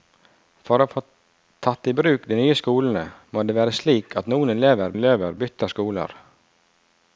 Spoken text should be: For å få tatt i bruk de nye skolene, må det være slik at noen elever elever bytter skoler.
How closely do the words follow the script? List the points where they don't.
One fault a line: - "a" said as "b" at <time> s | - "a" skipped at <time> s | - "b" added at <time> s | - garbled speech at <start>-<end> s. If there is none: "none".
none